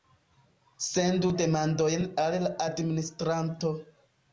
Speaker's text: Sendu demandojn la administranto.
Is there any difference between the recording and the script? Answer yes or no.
yes